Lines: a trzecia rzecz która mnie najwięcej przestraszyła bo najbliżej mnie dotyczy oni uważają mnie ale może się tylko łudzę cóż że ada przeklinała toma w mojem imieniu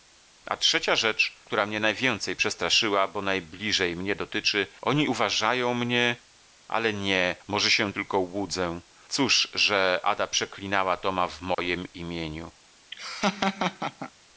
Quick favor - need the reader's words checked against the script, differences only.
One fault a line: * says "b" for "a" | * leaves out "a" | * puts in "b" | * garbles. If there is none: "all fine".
* puts in "nie"